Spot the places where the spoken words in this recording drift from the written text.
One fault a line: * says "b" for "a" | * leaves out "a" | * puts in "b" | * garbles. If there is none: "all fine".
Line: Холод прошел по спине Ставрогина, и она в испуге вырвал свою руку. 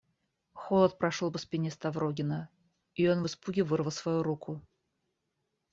* says "он" for "она"